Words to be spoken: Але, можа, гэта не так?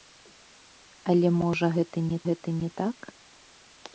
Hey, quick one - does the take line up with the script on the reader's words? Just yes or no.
no